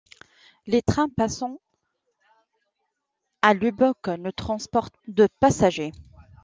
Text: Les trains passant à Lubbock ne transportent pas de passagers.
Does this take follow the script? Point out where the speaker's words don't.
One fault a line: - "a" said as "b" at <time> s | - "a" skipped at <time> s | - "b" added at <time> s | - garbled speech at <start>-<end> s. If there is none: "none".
- "pas" skipped at 5.0 s